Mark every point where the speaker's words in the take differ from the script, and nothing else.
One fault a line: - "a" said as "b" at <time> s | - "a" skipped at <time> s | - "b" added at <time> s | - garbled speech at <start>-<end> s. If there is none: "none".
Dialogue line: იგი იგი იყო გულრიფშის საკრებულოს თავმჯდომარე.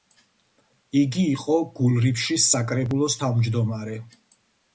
- "იგი" skipped at 1.2 s